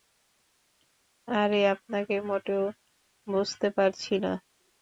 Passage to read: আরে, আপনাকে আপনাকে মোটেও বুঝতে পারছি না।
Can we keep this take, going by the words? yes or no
no